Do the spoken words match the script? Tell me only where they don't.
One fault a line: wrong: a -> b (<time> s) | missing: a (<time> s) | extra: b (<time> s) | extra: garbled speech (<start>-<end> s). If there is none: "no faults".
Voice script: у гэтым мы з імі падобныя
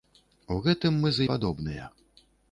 missing: імі (1.3 s)